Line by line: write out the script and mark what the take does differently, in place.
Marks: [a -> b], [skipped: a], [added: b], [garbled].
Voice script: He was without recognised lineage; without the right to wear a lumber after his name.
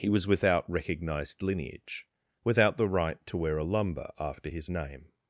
He was without recognised lineage; without the right to wear a lumber after his name.